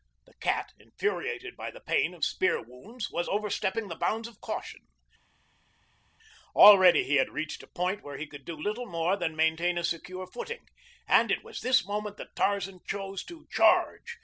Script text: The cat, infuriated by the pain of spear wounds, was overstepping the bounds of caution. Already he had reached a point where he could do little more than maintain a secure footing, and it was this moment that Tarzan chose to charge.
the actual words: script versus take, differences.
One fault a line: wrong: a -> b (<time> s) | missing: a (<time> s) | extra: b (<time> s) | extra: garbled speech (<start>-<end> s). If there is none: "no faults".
no faults